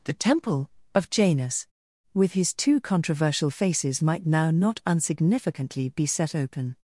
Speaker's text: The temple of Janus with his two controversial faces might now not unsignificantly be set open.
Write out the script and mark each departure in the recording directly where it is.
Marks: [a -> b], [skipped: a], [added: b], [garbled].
The temple of Janus with his two controversial faces might now not unsignificantly be set open.